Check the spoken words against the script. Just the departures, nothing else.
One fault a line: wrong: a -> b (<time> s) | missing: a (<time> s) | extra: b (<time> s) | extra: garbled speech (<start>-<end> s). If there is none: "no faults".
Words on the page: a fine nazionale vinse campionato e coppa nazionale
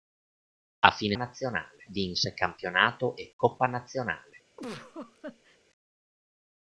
no faults